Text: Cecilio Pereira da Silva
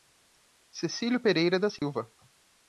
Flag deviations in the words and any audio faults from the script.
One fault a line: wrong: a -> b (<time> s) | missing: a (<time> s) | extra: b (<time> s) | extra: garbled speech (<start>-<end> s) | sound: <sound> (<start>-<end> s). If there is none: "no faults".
sound: dropout (1.8-1.8 s)